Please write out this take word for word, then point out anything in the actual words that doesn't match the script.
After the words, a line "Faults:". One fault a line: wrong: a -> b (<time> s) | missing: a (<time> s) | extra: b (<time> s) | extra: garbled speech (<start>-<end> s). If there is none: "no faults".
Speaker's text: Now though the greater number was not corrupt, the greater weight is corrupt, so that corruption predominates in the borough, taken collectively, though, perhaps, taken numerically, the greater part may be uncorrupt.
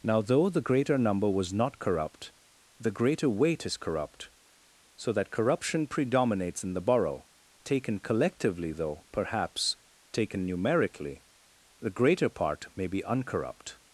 Now though the greater number was not corrupt, the greater weight is corrupt, so that corruption predominates in the borough, taken collectively, though, perhaps, taken numerically, the greater part may be uncorrupt.
Faults:
no faults